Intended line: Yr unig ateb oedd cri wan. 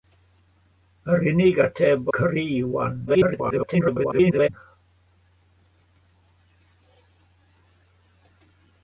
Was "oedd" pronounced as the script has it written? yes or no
no